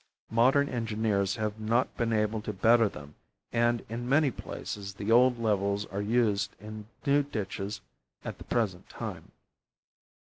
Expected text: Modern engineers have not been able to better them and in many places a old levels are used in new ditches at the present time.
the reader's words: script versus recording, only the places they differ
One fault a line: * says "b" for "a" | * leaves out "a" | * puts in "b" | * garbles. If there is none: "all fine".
* says "the" for "a"